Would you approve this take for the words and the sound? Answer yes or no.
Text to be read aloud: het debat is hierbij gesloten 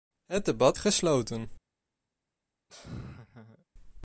no